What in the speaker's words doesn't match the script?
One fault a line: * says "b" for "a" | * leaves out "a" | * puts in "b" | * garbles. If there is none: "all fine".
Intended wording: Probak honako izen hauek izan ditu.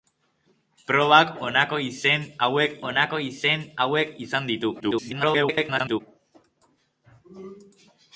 * puts in "honako izen hauek"
* garbles